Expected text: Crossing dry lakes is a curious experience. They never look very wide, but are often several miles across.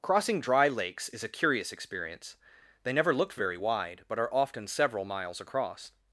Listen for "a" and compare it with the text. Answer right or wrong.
right